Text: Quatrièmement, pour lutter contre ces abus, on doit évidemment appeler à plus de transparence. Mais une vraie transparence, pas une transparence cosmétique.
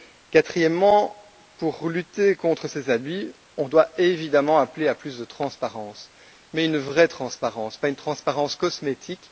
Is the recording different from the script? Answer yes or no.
no